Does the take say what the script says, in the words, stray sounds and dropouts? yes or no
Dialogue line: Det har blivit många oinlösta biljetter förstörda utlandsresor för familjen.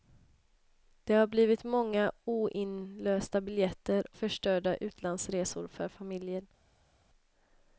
yes